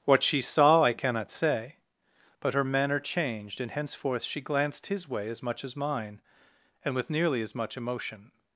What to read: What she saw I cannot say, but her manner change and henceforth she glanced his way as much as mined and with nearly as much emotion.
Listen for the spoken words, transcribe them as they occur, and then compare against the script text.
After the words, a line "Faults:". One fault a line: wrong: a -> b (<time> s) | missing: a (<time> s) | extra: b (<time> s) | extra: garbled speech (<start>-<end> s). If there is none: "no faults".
What she saw I cannot say, but her manner changed and henceforth she glanced his way as much as mine and with nearly as much emotion.
Faults:
wrong: change -> changed (3.0 s)
wrong: mined -> mine (5.8 s)